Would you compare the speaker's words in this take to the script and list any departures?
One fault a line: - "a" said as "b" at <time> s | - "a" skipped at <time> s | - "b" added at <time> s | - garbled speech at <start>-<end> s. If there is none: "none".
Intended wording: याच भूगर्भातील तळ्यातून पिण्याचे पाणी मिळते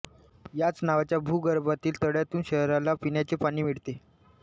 - "नावाच्या" added at 0.8 s
- "शहराला" added at 2.5 s